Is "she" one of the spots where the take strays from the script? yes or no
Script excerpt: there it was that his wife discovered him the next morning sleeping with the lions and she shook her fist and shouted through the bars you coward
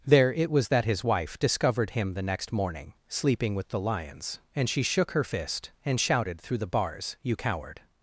no